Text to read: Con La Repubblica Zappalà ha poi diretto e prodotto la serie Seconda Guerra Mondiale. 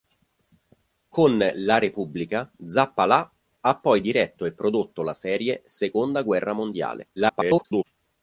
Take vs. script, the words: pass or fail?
fail